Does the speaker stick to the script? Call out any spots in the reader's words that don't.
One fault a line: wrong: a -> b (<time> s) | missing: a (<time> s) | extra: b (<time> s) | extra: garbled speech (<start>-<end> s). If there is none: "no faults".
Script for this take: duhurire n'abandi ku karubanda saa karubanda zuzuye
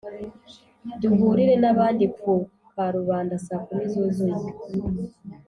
wrong: karubanda -> kumi (3.7 s)